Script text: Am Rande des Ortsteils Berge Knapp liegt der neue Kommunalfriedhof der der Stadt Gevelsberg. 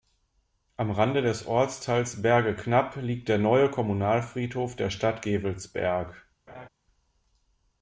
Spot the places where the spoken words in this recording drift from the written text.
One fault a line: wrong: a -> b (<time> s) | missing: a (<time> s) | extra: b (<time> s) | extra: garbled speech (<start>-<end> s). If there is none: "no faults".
missing: der (4.9 s)